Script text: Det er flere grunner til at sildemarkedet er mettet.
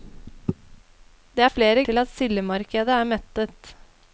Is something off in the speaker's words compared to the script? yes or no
yes